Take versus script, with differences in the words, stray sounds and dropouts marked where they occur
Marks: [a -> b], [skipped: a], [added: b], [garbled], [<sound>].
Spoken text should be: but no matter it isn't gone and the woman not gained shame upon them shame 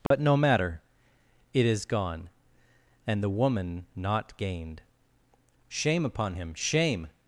but [dropout] no matter it [isn't -> is] gone and the woman not gained shame upon [them -> him] shame